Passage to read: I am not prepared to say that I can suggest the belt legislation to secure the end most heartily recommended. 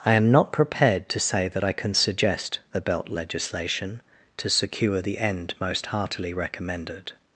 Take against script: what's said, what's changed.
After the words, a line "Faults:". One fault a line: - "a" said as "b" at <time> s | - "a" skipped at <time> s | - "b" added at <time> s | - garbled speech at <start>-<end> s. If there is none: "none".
I am not prepared to say that I can suggest the belt legislation to secure the end most heartily recommended.
Faults:
none